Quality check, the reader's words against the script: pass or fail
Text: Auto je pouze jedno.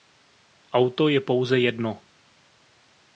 pass